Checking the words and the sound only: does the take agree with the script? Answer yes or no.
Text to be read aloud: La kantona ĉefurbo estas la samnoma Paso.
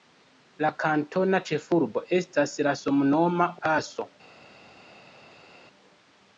yes